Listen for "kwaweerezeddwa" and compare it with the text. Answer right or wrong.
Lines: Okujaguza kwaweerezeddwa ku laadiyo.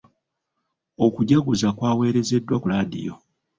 right